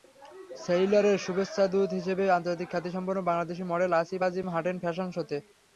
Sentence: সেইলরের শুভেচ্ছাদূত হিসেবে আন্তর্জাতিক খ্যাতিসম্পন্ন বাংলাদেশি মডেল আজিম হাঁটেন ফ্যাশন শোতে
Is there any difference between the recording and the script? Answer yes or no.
yes